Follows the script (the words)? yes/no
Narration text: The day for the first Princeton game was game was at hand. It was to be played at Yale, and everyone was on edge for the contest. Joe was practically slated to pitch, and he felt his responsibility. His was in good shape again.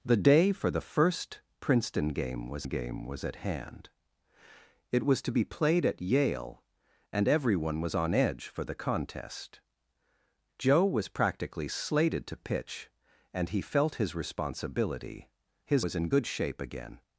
yes